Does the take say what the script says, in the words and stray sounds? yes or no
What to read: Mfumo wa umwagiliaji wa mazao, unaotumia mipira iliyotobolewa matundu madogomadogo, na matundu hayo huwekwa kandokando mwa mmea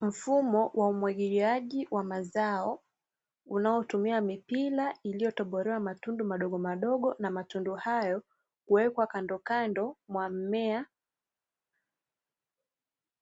yes